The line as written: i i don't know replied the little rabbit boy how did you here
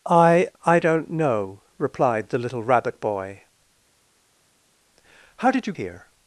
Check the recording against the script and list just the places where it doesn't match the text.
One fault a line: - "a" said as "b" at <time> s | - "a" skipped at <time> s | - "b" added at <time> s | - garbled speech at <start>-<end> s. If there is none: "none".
none